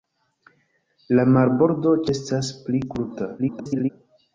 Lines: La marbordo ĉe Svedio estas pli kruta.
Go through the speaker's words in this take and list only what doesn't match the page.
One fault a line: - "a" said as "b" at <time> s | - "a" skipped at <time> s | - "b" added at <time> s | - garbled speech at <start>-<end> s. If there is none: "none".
- "ĉe Svedio" skipped at 1.9 s
- garbled speech at 3.4-3.9 s